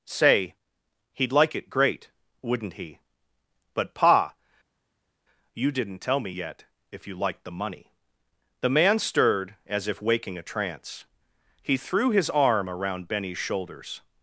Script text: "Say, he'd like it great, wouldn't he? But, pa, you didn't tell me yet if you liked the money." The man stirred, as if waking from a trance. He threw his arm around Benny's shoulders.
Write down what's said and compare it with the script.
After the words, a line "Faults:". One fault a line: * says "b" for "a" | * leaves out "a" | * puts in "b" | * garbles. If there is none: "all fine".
"Say, he'd like it great, wouldn't he? But, pa, you didn't tell me yet if you liked the money." The man stirred, as if waking a trance. He threw his arm around Benny's shoulders.
Faults:
* leaves out "from"